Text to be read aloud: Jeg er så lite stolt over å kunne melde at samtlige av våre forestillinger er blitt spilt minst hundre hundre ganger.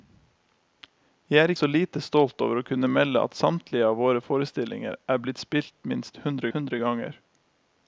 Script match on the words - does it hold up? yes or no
yes